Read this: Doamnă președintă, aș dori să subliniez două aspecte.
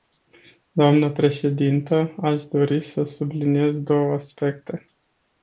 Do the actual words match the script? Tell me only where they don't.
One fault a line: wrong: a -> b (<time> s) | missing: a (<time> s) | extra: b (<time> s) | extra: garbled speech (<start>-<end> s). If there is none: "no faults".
no faults